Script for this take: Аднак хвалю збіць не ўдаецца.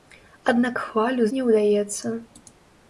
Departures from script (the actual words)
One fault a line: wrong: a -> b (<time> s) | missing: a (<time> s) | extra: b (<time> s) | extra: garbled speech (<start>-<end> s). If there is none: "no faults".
missing: збіць (1.3 s)